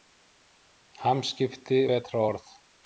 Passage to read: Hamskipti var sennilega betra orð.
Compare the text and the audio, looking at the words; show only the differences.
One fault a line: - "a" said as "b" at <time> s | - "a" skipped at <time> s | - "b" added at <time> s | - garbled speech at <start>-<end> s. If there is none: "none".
- "var sennilega" skipped at 1.8 s